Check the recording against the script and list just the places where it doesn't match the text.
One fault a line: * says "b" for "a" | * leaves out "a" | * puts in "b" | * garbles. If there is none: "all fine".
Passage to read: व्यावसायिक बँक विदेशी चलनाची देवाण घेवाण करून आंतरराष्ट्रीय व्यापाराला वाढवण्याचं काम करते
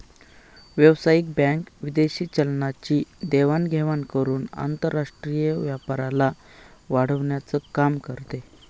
all fine